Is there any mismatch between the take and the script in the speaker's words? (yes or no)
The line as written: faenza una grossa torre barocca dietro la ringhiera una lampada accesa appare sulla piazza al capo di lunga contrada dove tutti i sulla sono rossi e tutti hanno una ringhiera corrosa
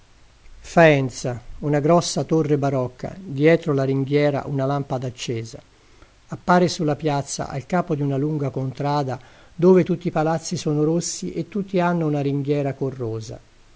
yes